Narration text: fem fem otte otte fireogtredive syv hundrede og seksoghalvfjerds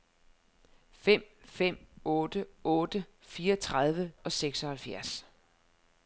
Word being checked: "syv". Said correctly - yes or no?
no